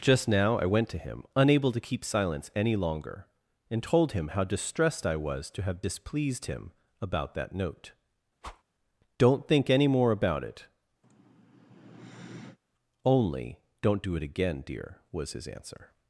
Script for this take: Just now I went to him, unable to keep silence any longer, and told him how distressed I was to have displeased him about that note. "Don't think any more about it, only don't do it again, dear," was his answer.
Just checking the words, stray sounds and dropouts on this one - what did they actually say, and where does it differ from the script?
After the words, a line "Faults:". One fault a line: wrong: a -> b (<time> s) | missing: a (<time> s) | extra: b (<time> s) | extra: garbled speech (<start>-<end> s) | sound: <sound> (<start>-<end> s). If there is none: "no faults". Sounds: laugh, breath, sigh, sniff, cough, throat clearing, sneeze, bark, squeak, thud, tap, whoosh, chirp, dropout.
Just now I went to him, unable to keep silence any longer, and told him how distressed I was to have displeased him about that note. "Don't think any more about it, only don't do it again, dear," was his answer.
Faults:
sound: whoosh (8.4-8.6 s)
sound: sigh (11.0-12.6 s)